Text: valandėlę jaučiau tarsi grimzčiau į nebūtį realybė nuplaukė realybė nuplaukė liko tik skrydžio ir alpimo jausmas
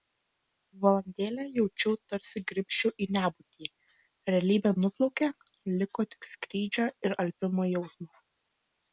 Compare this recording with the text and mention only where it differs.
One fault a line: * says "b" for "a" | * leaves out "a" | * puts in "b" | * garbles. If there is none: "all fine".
* leaves out "realybė nuplaukė"